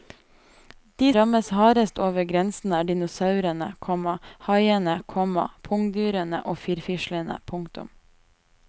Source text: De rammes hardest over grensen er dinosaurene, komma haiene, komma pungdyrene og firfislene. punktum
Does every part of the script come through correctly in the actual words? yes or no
yes